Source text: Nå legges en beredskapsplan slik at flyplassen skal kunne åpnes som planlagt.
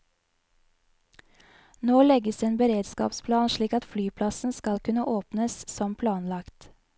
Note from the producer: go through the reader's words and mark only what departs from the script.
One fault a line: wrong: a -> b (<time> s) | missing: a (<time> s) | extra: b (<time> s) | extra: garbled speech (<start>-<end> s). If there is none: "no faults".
no faults